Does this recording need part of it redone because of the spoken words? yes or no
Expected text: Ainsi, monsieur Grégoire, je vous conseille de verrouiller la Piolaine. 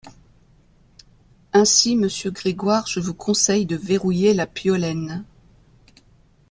no